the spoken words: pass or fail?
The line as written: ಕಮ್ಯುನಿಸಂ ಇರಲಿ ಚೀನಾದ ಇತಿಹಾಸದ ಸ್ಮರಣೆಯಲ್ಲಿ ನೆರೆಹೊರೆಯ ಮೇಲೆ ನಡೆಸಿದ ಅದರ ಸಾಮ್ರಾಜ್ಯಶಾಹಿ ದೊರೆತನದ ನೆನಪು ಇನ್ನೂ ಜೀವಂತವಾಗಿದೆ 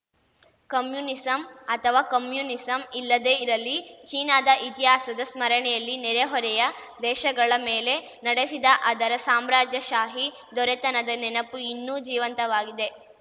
fail